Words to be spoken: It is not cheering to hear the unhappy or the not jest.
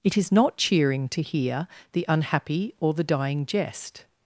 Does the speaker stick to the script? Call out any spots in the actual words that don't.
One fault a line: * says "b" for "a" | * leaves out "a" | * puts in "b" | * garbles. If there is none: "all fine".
* says "dying" for "not"